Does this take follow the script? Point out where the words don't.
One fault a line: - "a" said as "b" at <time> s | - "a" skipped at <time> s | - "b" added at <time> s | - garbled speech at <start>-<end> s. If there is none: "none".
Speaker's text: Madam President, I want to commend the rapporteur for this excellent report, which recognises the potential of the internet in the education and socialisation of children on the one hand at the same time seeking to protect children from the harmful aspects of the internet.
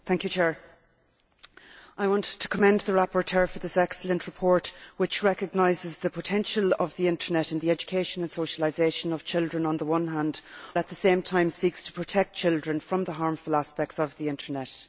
none